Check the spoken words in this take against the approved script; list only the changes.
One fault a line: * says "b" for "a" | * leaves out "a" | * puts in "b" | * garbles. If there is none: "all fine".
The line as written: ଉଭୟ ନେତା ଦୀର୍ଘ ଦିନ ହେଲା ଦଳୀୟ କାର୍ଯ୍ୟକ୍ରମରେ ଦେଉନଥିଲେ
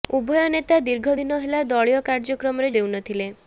all fine